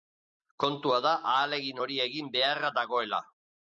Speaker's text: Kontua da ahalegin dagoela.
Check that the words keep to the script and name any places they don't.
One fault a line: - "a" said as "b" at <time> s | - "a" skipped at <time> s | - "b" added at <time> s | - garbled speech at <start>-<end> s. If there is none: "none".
- "hori egin beharra" added at 1.8 s